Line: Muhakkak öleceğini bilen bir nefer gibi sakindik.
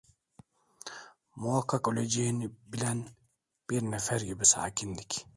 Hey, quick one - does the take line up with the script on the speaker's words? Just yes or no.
yes